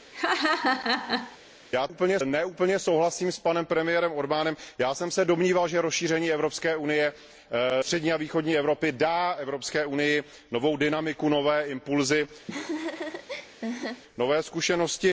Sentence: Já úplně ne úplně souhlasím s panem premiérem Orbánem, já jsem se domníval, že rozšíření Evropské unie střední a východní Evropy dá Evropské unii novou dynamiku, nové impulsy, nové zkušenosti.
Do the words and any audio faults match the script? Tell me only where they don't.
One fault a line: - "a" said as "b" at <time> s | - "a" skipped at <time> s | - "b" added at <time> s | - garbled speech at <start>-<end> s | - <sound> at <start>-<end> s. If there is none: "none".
- laugh at 0.1-1.4 s
- laugh at 12.5-14.0 s